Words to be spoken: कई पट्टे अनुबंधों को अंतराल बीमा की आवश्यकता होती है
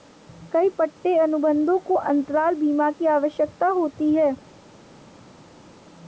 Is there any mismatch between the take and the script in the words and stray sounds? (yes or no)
no